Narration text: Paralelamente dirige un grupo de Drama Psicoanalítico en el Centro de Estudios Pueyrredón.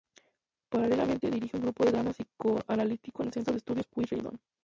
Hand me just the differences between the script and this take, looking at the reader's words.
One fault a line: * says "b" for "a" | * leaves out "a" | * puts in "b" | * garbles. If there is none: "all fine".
all fine